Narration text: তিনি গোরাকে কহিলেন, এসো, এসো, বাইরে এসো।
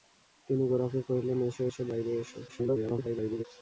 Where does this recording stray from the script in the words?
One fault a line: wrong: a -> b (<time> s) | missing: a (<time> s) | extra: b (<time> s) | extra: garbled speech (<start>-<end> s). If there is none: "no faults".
extra: garbled speech (2.5-3.4 s)